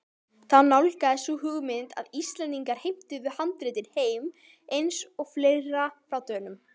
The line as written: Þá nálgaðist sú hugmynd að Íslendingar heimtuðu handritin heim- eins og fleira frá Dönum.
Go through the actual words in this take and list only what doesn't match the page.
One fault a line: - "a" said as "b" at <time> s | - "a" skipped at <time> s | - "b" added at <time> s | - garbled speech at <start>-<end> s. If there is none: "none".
none